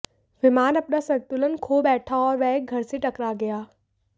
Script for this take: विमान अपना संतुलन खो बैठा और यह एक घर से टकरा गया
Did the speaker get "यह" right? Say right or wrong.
wrong